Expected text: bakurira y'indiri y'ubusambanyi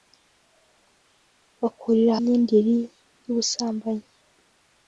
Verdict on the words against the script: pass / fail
pass